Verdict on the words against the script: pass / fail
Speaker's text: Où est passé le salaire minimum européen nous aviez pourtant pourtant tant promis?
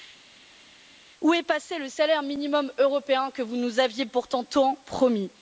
fail